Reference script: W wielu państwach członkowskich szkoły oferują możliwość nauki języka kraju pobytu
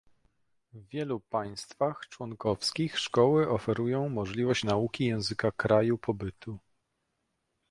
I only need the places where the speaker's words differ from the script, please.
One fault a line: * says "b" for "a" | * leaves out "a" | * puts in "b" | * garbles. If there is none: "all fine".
all fine